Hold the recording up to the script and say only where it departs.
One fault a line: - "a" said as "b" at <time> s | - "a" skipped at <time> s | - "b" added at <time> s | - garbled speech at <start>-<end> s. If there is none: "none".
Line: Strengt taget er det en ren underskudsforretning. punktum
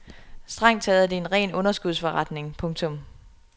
none